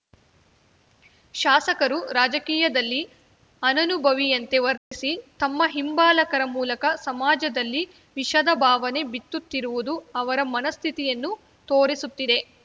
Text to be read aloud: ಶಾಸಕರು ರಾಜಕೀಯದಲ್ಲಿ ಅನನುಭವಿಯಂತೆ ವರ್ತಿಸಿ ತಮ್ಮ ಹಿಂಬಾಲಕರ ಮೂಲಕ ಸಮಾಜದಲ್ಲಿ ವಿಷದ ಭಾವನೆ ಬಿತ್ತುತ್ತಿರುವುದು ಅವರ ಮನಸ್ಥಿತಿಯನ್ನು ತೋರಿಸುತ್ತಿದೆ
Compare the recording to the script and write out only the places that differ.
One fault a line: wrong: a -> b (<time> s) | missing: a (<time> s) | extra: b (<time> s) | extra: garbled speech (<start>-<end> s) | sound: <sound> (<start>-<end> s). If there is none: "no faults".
sound: dropout (4.8-4.9 s)